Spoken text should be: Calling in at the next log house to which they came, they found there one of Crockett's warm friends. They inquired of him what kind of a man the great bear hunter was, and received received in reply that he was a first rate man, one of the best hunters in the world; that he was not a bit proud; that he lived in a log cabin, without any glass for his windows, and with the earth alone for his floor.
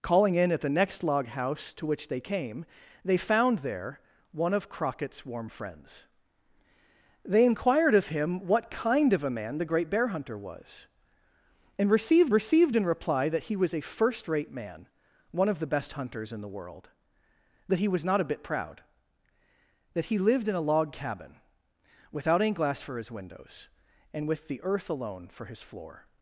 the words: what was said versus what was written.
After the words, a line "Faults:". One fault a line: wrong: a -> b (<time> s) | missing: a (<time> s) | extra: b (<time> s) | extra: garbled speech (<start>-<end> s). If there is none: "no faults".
Calling in at the next log house to which they came, they found there one of Crockett's warm friends. They inquired of him what kind of a man the great bear hunter was, and received received in reply that he was a first rate man, one of the best hunters in the world; that he was not a bit proud; that he lived in a log cabin, without any glass for his windows, and with the earth alone for his floor.
Faults:
no faults